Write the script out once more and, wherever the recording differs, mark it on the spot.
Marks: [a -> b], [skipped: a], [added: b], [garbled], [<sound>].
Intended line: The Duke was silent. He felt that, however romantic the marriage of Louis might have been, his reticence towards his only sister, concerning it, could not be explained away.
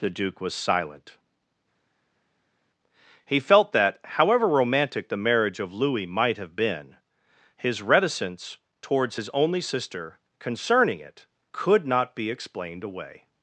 The Duke was silent. He felt that, however romantic the marriage of Louis might have been, his reticence towards his only sister, concerning it, could not be explained away.